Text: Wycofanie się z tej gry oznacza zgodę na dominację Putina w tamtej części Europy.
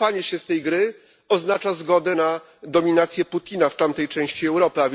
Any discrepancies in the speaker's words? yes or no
no